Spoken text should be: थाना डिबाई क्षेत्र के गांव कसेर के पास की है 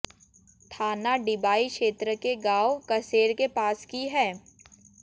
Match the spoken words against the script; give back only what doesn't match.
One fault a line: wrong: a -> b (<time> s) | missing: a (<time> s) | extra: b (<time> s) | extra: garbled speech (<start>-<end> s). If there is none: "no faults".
no faults